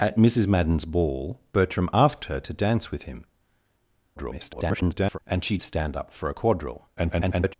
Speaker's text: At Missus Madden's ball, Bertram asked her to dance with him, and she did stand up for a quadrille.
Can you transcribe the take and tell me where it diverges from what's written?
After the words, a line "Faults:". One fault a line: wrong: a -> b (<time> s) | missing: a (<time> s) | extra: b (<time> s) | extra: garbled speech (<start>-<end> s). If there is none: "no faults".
At Missus Madden's ball, Bertram asked her to dance with him, [garbled] and she stand up for a quadrille. [garbled]
Faults:
extra: garbled speech (4.2-5.2 s)
missing: did (5.6 s)
extra: garbled speech (7.0-7.5 s)